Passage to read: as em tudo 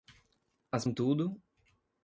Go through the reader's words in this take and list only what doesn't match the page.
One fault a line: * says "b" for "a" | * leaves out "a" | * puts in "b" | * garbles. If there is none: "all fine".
all fine